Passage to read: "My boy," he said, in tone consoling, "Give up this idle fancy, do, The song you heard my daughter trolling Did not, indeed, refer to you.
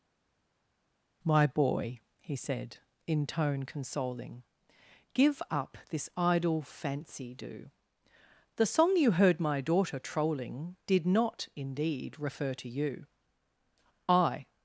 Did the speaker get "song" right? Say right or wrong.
right